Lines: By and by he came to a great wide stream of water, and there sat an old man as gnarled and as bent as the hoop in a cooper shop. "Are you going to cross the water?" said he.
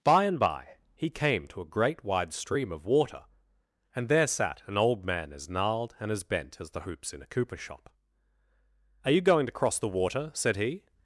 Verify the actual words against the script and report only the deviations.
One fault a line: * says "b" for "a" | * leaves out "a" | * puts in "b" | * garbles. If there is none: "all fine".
* says "hoops" for "hoop"